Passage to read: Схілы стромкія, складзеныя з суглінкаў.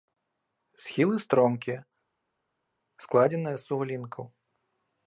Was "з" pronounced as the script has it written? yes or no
yes